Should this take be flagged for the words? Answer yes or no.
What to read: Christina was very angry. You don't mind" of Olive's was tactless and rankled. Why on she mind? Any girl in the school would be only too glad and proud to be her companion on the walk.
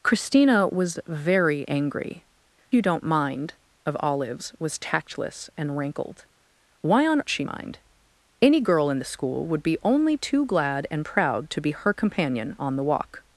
no